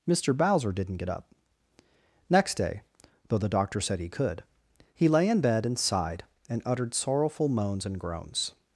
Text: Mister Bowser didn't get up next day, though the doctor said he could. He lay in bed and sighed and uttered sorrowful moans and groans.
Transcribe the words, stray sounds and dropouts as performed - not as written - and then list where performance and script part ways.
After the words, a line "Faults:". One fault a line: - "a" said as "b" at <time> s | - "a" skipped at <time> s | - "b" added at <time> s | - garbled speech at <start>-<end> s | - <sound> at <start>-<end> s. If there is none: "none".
Mister Bowser didn't get up next day, though the doctor said he could. He lay in bed and sighed and uttered sorrowful moans and groans.
Faults:
none